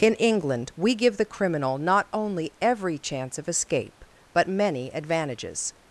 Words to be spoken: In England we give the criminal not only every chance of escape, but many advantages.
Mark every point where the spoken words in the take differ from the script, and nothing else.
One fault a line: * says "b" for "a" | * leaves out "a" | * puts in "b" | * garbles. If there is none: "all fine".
all fine